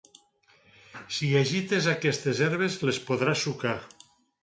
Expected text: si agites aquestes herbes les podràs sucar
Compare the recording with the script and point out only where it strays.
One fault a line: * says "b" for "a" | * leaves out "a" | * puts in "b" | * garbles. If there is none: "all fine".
all fine